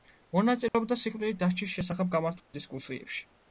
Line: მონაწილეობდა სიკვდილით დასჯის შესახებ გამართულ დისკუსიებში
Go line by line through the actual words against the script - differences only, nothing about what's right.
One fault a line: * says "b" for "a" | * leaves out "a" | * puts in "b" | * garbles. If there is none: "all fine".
all fine